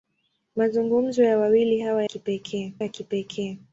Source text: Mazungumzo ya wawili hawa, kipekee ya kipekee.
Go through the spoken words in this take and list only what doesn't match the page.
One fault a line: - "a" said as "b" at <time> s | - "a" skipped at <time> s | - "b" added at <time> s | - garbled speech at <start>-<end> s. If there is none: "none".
none